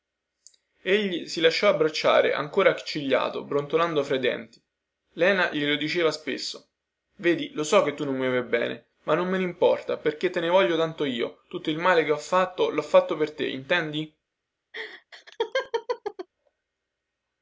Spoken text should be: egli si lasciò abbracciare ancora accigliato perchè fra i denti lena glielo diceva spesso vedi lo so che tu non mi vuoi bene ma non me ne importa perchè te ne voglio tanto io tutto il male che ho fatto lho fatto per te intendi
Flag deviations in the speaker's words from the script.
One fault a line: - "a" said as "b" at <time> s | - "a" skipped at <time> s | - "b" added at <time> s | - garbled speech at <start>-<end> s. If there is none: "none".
- "perchè" said as "brontolando" at 3.4 s